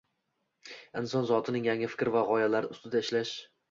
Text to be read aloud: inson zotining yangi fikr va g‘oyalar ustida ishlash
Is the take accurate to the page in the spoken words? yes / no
yes